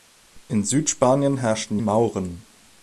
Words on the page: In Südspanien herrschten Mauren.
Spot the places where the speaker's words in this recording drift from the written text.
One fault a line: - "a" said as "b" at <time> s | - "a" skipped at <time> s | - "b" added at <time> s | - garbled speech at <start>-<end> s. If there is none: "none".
none